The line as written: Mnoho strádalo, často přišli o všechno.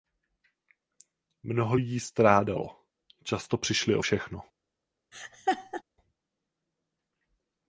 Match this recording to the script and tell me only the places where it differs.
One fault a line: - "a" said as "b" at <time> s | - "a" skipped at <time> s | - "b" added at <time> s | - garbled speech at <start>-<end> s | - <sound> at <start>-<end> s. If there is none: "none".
- "lidí" added at 1.7 s
- laugh at 5.1-5.8 s